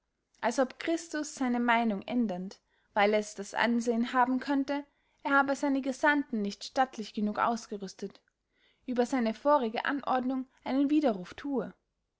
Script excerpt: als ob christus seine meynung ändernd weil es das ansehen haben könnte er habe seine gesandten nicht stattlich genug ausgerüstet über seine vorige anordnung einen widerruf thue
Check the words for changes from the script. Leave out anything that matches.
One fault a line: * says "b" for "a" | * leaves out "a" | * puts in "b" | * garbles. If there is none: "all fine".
all fine